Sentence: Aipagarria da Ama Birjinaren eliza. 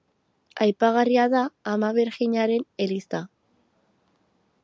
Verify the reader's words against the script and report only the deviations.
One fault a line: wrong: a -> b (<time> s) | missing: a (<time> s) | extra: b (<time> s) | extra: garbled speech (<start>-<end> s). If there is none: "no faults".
no faults